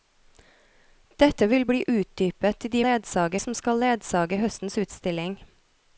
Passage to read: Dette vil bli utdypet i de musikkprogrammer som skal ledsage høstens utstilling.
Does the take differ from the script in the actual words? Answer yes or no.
yes